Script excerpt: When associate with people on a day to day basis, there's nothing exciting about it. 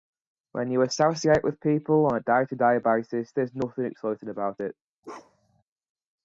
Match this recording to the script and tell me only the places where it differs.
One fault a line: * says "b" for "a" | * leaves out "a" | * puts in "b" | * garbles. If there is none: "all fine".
* puts in "you"